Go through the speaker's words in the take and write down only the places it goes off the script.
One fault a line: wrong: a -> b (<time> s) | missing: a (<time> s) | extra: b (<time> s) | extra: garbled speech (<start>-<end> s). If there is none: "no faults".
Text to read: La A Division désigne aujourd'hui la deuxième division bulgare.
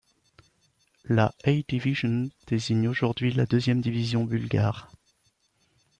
no faults